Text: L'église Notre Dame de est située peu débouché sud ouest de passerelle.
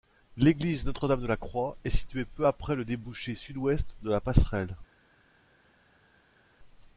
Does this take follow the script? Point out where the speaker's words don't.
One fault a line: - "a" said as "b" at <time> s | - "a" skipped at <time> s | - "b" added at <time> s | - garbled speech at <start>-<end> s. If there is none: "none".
- "la Croix" added at 1.3 s
- "après le" added at 2.5 s
- "la" added at 4.1 s